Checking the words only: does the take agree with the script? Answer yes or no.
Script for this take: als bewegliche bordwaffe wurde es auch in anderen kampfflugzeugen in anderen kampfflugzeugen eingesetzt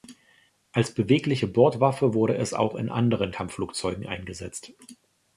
no